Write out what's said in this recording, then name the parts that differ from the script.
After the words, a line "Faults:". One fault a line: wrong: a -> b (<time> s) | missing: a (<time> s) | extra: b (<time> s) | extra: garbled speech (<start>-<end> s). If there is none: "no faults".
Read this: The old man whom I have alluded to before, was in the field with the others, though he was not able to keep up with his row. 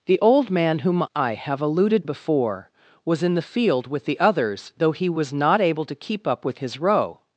The old man whom I have alluded before, was in the field with the others, though he was not able to keep up with his row.
Faults:
missing: to (2.0 s)